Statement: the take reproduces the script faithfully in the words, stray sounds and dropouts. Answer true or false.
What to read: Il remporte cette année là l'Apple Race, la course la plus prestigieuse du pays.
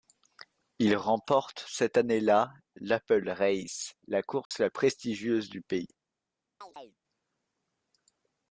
false